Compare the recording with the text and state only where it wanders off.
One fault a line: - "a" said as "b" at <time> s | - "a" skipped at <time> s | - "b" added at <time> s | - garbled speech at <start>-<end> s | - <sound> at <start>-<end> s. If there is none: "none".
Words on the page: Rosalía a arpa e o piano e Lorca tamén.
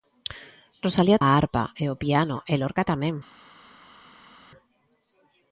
none